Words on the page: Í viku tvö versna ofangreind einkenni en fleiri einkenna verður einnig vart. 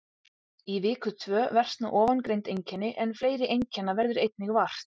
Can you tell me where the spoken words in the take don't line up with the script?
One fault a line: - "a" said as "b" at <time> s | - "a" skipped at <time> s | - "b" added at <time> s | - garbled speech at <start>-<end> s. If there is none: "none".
none